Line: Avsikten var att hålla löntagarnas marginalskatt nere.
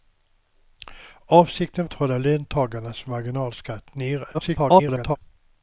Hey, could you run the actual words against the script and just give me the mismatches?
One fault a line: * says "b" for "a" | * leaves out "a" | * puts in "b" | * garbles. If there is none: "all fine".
* leaves out "var"
* garbles